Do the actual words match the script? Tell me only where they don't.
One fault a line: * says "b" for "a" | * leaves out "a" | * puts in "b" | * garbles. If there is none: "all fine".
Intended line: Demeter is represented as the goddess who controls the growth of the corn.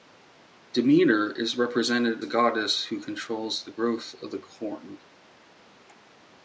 * leaves out "as"